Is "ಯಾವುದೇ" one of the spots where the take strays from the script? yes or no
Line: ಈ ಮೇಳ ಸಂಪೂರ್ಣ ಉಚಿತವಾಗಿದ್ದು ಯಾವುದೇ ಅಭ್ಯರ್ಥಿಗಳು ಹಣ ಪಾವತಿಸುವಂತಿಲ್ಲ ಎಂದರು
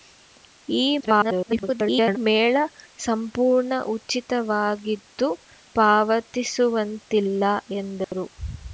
yes